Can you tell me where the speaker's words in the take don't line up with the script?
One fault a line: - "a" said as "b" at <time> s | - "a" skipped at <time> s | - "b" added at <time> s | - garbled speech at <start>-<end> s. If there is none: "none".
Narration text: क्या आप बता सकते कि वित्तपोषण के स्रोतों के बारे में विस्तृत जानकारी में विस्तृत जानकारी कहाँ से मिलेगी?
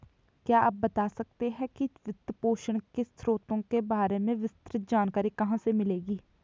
- "है" added at 1.5 s
- "में विस्तृत जानकारी" skipped at 5.3 s